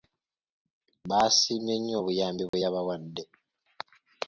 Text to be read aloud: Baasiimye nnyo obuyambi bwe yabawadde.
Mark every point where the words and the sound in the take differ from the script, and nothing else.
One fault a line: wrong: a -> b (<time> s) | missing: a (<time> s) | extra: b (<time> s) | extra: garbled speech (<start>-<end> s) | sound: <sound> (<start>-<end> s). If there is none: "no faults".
sound: dropout (2.5-2.5 s)